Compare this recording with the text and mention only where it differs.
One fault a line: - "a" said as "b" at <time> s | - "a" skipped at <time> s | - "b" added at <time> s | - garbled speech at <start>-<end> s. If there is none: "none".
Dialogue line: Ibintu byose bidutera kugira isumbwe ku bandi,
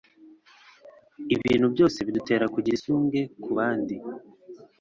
none